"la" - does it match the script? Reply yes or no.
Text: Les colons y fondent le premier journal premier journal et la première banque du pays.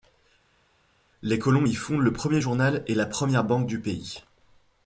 yes